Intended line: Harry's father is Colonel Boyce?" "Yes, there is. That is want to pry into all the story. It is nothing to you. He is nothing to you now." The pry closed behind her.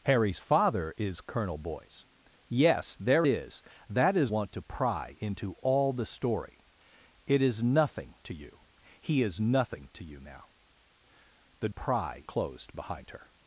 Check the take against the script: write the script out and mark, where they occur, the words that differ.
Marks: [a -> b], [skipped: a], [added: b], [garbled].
Harry's father is Colonel Boyce?" "Yes, there is. That is want to pry into all the story. It is nothing to you. He is nothing to you now." The pry closed behind her.